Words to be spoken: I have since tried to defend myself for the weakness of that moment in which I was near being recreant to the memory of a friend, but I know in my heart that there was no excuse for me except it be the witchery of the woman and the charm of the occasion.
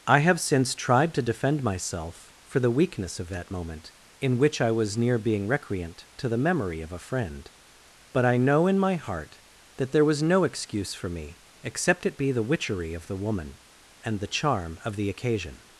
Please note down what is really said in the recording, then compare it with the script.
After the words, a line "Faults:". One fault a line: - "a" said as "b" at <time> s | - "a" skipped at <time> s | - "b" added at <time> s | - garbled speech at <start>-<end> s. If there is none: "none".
I have since tried to defend myself for the weakness of that moment in which I was near being recreant to the memory of a friend, but I know in my heart that there was no excuse for me except it be the witchery of the woman and the charm of the occasion.
Faults:
none